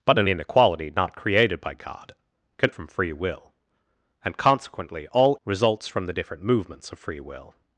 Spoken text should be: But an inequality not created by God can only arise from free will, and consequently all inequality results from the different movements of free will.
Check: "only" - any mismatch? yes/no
yes